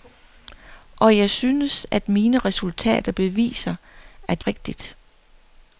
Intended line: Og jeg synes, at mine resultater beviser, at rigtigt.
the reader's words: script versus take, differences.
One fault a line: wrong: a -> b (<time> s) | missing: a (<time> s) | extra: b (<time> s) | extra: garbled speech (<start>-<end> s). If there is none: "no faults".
no faults